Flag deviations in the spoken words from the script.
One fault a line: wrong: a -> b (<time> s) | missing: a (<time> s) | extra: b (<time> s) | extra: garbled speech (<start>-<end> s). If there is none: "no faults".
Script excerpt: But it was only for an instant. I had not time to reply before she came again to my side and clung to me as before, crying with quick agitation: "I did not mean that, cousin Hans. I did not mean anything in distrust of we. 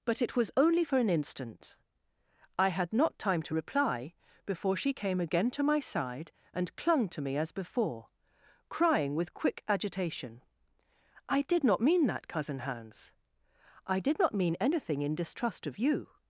wrong: we -> you (15.8 s)